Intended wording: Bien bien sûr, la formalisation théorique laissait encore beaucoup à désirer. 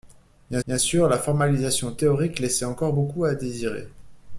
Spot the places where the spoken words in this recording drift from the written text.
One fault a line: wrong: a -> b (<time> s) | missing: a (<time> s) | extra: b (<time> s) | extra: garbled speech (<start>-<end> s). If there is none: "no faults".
no faults